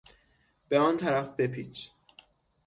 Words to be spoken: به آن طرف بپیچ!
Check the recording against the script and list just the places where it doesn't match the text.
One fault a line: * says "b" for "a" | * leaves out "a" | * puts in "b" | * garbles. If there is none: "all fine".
all fine